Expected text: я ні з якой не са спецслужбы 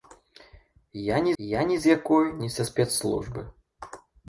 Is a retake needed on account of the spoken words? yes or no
yes